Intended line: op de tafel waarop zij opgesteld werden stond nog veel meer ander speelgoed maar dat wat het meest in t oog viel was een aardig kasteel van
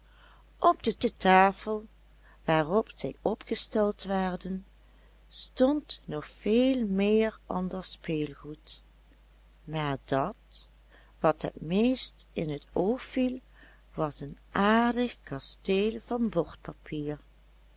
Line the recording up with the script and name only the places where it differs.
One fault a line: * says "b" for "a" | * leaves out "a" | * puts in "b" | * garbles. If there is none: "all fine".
* puts in "de"